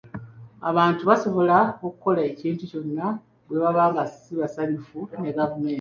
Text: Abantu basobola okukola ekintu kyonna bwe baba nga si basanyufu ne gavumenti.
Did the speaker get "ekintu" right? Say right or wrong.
right